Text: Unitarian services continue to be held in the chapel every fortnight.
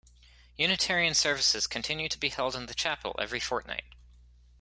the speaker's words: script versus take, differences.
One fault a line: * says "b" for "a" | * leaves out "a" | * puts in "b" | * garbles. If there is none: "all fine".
all fine